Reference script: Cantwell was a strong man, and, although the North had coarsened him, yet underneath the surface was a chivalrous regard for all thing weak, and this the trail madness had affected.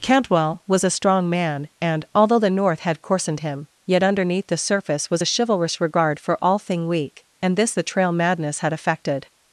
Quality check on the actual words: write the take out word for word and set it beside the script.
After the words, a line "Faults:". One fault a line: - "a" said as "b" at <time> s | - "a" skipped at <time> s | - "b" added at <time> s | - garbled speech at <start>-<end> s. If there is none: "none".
Cantwell was a strong man, and, although the North had coarsened him, yet underneath the surface was a chivalrous regard for all thing weak, and this the trail madness had affected.
Faults:
none